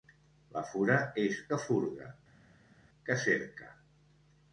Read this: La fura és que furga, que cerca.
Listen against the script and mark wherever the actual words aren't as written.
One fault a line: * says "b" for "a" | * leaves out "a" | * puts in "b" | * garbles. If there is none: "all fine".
all fine